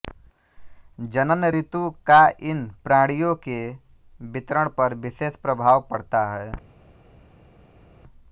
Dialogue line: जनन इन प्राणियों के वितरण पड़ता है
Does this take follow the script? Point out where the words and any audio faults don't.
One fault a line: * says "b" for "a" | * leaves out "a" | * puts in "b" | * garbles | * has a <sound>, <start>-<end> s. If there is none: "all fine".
* puts in "ऋतु का"
* puts in "पर विशेष प्रभाव"